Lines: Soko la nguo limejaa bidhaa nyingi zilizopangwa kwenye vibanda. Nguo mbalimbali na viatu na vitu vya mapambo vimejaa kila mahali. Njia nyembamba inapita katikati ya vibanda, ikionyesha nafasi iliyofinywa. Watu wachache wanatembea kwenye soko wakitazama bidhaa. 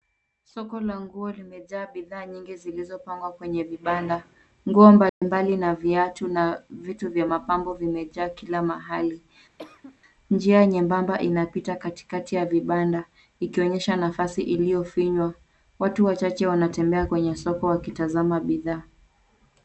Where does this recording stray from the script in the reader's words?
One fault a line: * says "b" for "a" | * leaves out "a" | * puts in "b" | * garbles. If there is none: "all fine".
all fine